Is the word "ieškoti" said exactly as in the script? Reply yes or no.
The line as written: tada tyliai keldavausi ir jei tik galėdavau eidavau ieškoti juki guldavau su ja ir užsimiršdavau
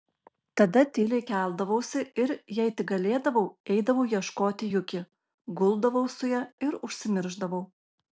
yes